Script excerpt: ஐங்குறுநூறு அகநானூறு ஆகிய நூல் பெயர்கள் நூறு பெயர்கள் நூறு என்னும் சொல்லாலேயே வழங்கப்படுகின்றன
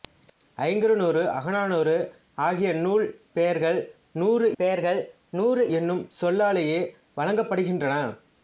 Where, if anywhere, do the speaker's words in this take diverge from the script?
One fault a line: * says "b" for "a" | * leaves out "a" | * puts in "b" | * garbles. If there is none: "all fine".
all fine